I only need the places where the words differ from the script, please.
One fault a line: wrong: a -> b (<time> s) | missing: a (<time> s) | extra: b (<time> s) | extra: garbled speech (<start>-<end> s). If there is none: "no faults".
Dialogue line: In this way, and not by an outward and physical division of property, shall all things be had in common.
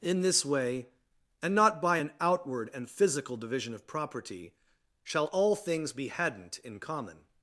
wrong: had -> hadn't (6.1 s)